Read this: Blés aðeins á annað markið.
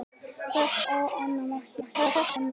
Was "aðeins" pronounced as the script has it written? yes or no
no